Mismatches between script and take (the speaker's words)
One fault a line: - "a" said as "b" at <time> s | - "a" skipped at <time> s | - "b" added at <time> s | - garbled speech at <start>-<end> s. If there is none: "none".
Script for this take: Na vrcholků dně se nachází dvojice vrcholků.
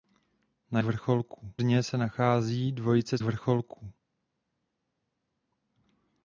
none